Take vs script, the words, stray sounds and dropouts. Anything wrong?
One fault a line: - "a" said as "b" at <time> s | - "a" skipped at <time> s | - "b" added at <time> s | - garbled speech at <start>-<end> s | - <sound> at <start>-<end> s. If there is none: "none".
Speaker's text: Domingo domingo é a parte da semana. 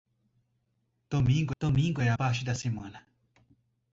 none